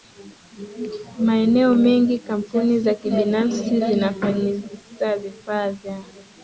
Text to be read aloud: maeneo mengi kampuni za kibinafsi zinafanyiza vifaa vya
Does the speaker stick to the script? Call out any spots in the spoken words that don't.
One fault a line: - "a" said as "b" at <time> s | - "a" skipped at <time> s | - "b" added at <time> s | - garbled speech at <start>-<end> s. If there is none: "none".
none